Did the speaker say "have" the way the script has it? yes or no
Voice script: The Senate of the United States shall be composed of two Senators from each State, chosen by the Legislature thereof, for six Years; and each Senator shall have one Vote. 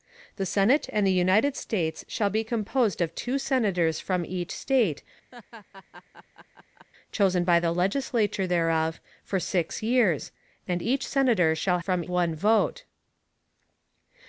no